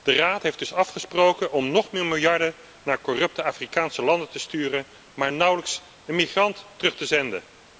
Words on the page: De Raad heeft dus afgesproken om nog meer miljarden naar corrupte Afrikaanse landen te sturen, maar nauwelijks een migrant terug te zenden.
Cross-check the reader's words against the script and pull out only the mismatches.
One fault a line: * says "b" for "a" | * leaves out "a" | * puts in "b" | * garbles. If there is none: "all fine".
all fine